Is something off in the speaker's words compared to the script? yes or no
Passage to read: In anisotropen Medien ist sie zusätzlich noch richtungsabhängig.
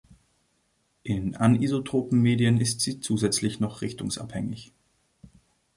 no